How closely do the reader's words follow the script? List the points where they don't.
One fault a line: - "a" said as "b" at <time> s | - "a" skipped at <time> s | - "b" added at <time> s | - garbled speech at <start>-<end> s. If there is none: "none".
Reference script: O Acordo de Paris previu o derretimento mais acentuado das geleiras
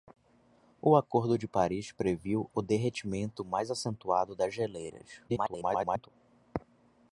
- garbled speech at 5.3-6.1 s